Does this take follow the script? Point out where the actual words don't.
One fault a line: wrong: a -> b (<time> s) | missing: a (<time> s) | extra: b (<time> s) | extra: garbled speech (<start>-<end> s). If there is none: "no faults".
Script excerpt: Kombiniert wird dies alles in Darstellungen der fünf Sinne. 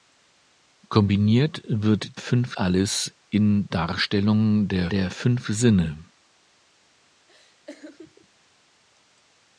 wrong: dies -> fünf (2.1 s)
extra: der (4.9 s)